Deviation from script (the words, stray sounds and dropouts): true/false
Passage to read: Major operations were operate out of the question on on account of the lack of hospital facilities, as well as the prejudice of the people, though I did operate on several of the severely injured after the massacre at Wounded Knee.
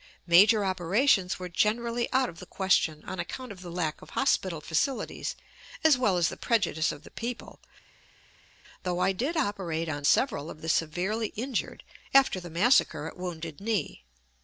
true